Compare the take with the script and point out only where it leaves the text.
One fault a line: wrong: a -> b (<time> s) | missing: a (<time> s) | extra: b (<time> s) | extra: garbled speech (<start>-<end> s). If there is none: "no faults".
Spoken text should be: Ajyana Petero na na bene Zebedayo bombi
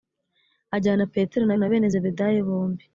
no faults